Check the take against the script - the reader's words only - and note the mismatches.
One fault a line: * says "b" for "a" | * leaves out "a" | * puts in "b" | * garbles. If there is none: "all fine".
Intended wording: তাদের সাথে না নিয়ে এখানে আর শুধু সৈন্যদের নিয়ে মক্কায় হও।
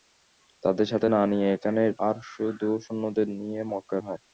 all fine